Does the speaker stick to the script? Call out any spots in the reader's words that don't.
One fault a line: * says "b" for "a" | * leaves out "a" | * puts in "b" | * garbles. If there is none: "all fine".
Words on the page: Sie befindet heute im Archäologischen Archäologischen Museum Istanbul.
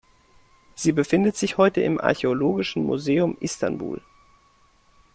* puts in "sich"
* leaves out "Archäologischen"